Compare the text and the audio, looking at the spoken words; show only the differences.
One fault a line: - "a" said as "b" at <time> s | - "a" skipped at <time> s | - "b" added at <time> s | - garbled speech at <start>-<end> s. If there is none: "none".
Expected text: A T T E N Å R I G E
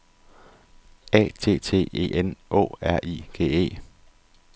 none